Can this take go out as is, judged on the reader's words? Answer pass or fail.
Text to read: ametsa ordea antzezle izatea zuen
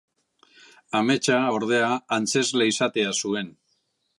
pass